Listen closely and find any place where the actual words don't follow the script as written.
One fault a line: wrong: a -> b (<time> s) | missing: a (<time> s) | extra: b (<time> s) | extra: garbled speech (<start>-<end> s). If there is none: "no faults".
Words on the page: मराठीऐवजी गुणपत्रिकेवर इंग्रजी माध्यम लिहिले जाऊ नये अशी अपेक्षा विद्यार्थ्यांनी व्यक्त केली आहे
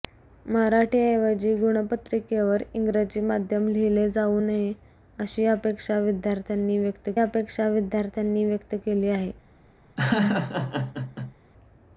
extra: अपेक्षा विद्यार्थ्यांनी व्यक्त (7.2 s)